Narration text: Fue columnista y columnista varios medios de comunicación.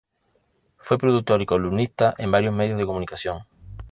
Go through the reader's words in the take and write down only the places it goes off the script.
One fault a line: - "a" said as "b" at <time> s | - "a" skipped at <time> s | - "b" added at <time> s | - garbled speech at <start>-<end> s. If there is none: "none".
- "columnista" said as "productor" at 1.0 s
- "en" added at 2.2 s